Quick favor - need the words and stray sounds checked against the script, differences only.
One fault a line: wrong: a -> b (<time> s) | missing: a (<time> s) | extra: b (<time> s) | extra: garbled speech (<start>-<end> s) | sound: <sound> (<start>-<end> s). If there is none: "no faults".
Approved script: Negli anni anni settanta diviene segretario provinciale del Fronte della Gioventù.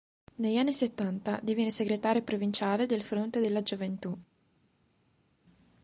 missing: anni (0.7 s)